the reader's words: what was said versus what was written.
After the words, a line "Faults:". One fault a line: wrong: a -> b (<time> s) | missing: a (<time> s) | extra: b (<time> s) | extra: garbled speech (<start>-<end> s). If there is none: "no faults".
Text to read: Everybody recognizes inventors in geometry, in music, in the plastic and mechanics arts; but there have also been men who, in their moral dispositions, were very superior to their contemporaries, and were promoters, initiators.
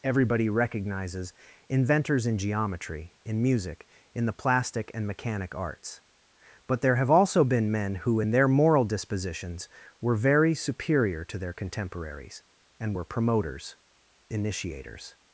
Everybody recognizes inventors in geometry, in music, in the plastic and mechanic arts; but there have also been men who, in their moral dispositions, were very superior to their contemporaries, and were promoters, initiators.
Faults:
wrong: mechanics -> mechanic (5.0 s)